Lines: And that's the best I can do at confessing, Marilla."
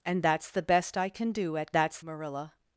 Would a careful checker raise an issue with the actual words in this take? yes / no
yes